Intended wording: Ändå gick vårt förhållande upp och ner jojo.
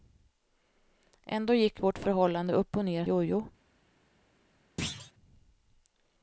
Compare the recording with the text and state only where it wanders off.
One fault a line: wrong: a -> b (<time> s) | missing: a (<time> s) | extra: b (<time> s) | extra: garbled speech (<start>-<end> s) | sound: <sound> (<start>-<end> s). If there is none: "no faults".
sound: thud (4.8-5.1 s)